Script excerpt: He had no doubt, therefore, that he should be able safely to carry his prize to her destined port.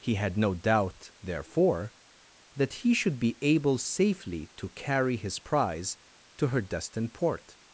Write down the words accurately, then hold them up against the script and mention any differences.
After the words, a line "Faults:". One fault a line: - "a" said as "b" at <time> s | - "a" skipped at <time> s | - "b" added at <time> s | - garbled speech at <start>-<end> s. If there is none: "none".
He had no doubt, therefore, that he should be able safely to carry his prize to her destined port.
Faults:
none